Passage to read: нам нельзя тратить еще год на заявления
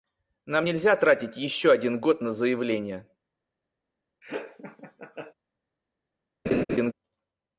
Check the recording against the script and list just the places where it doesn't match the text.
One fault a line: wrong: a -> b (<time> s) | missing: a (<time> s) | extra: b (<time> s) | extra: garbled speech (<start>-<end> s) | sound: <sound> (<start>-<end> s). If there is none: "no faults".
extra: один (1.7 s)
sound: laugh (4.2-5.3 s)
sound: laugh (6.4-6.9 s)